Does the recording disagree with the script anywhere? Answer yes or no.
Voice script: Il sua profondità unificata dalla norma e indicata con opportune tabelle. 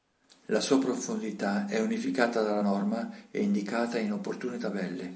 yes